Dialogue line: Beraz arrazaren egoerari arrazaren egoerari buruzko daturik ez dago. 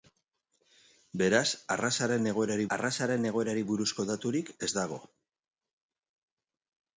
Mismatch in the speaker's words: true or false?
false